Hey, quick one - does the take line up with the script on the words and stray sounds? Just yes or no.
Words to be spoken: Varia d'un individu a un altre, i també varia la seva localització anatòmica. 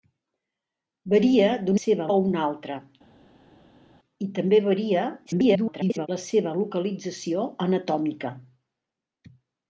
no